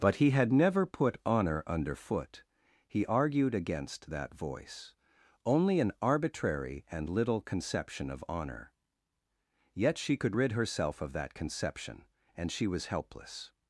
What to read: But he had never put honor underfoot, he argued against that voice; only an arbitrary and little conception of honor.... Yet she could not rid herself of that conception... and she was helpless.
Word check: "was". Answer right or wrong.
right